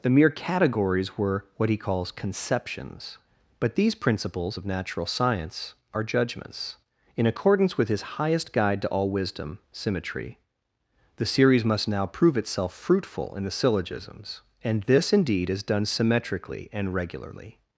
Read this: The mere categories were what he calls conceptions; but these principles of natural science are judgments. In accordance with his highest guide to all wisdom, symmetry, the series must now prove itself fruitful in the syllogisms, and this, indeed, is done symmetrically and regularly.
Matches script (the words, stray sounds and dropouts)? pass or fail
pass